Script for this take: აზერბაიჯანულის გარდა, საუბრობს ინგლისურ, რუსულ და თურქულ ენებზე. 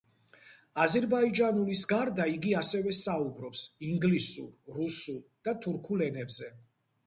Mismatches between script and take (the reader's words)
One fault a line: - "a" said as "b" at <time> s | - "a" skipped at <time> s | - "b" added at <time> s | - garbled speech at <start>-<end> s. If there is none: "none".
- "იგი ასევე" added at 2.3 s